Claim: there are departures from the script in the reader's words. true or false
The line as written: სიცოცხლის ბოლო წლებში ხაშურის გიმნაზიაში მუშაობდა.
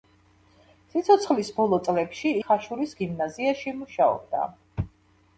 false